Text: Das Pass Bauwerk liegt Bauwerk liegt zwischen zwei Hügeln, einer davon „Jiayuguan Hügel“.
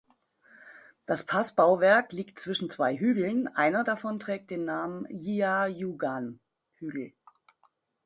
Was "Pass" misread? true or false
false